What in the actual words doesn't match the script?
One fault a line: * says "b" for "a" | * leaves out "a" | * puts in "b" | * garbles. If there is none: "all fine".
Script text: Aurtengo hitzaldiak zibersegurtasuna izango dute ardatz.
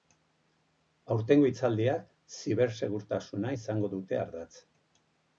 all fine